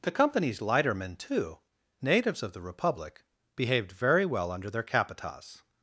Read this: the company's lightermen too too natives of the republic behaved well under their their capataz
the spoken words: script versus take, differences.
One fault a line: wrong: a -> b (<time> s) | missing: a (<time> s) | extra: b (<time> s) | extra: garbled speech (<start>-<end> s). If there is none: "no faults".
missing: too (1.6 s)
extra: very (3.9 s)
missing: their (4.8 s)